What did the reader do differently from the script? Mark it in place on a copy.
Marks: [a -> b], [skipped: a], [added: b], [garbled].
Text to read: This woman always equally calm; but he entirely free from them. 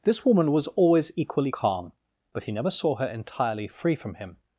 This woman [added: was] always equally calm; but he [added: never saw her] entirely free from [them. -> him]